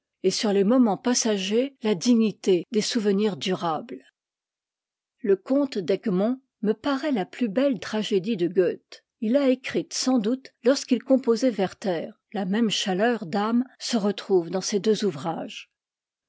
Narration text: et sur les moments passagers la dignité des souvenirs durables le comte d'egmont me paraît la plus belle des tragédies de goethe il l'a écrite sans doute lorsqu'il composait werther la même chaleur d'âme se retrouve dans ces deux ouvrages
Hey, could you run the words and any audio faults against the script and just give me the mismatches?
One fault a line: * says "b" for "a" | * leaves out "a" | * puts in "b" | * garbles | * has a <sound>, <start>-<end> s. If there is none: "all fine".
* leaves out "des"